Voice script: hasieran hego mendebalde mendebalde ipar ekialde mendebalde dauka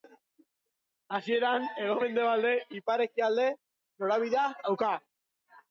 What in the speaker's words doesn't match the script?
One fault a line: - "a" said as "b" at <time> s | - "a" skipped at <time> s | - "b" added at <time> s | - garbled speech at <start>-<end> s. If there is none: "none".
- "mendebalde" skipped at 2.5 s
- "mendebalde" said as "norabidea" at 4.1 s